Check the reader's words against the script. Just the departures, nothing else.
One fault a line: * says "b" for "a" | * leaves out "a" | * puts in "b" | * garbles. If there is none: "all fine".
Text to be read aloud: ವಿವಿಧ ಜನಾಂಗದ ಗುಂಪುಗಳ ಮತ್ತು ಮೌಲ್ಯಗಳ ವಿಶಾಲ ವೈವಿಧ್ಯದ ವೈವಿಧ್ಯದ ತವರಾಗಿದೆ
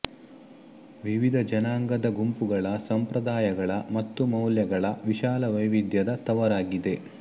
* puts in "ಸಂಪ್ರದಾಯಗಳ"
* leaves out "ವೈವಿಧ್ಯದ"